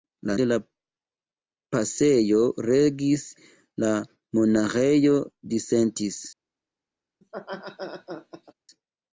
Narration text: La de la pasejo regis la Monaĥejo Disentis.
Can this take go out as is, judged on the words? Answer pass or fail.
pass